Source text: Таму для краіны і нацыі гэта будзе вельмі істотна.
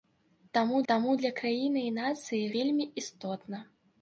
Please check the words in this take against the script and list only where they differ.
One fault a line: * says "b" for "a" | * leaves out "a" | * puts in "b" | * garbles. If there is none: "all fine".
* puts in "таму"
* leaves out "гэта будзе"